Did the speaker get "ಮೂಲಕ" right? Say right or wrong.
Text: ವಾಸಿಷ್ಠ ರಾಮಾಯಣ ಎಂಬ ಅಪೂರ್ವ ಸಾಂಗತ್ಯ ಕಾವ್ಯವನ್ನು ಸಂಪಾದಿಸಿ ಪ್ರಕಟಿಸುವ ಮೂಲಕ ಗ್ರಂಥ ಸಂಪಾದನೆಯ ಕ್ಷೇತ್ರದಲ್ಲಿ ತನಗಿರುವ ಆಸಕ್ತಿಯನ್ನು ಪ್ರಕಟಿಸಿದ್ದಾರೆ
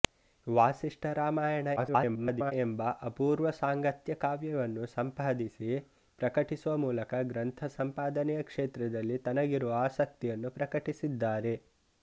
right